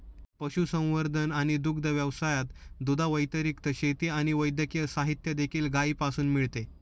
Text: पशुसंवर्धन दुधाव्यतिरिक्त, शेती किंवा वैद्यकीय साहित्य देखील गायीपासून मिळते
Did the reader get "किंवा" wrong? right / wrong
wrong